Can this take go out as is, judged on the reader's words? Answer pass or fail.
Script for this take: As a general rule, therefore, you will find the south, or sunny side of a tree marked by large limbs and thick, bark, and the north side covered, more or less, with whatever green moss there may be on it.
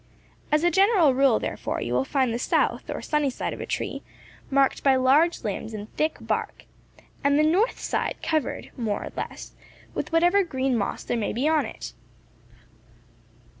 pass